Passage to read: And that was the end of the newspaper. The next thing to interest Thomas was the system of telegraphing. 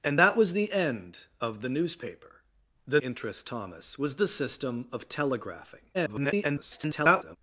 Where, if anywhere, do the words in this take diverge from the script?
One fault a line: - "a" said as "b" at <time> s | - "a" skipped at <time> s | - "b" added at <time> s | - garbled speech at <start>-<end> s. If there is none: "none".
- "next thing to" skipped at 3.0 s
- garbled speech at 5.9-7.4 s